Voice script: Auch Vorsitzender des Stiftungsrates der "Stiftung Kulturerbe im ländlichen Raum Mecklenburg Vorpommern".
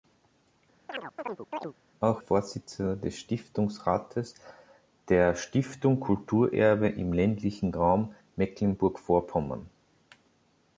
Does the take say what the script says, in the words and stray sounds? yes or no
no